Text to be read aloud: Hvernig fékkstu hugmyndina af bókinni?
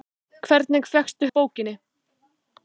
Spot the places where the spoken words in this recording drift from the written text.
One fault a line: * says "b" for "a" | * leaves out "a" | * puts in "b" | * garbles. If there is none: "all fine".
* leaves out "hugmyndina"